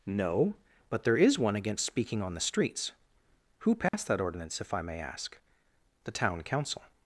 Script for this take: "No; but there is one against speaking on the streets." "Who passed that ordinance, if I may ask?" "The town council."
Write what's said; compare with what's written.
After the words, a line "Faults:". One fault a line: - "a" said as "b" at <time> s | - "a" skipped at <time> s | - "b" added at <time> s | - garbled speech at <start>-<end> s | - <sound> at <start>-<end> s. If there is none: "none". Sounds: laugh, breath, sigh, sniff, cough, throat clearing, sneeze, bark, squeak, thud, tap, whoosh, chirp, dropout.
"No; but there is one against speaking on the streets." "Who passed that ordinance, if I may ask?" "The town council."
Faults:
- dropout at 3.9-3.9 s